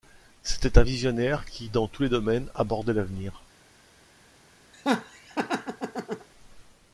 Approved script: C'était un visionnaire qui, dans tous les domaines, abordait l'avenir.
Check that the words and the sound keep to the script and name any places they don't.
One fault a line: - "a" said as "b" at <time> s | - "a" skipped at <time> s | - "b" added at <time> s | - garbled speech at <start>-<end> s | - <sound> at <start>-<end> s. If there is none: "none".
- laugh at 4.7-6.3 s